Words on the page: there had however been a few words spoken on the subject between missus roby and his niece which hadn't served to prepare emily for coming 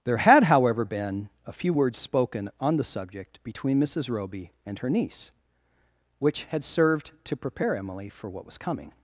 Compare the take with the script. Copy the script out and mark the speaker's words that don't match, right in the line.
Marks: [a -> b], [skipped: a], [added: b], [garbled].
there had however been a few words spoken on the subject between missus roby and [his -> her] niece which [hadn't -> had] served to prepare emily for [added: what was] coming